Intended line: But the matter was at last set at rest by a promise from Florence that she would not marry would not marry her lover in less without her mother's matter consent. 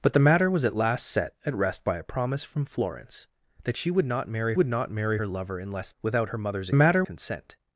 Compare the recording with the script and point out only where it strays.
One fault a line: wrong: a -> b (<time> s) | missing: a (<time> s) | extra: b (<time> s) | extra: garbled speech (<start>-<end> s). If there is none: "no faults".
no faults